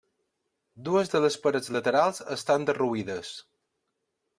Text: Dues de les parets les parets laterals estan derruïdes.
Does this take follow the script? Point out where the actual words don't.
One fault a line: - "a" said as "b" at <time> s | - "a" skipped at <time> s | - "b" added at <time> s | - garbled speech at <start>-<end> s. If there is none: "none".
- "les parets" skipped at 1.7 s